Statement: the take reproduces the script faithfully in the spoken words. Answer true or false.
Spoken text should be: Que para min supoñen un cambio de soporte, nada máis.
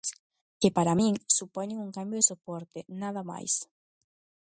true